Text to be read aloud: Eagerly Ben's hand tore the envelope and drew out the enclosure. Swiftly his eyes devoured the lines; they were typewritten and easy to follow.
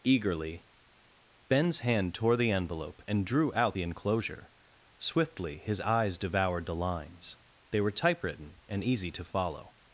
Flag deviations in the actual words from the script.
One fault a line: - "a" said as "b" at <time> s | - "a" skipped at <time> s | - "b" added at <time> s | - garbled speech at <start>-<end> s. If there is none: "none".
none